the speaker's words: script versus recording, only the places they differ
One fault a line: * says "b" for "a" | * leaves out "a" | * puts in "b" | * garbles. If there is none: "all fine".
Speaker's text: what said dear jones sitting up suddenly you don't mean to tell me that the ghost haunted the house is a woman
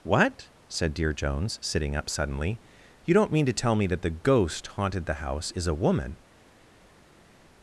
all fine